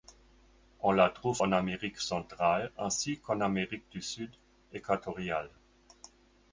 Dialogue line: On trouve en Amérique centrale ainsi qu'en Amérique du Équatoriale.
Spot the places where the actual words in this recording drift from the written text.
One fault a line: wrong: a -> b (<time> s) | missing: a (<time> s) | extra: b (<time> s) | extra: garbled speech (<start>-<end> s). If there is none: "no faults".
extra: la (0.9 s)
extra: Sud (4.0 s)